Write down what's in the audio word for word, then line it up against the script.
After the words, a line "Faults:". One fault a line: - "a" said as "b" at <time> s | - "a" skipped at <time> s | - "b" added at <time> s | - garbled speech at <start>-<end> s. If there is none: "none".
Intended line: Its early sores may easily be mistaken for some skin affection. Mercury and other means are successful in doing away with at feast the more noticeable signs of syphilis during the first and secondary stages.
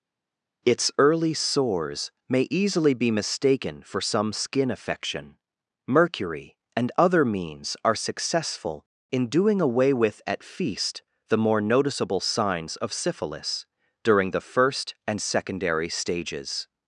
Its early sores may easily be mistaken for some skin affection. Mercury and other means are successful in doing away with at feast the more noticeable signs of syphilis during the first and secondary stages.
Faults:
none